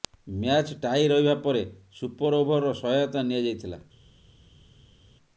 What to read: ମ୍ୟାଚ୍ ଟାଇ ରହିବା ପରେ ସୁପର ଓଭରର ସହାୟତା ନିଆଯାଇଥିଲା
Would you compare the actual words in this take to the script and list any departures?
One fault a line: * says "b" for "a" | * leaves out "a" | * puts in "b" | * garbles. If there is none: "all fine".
all fine